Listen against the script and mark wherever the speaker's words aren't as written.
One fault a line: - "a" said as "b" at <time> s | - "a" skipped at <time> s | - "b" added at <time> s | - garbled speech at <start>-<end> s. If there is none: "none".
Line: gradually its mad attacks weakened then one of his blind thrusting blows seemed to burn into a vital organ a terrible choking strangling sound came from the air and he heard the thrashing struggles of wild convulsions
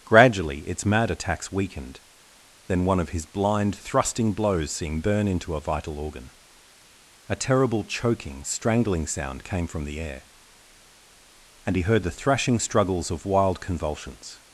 - "to" skipped at 5.0 s